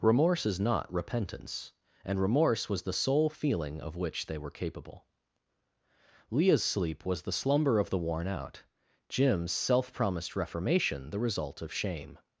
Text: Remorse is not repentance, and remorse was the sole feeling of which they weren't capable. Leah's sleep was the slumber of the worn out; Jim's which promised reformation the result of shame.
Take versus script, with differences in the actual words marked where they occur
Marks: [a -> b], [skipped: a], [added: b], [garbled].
Remorse is not repentance, and remorse was the sole feeling of which they [weren't -> were] capable. Leah's sleep was the slumber of the worn out; Jim's [which -> self] promised reformation the result of shame.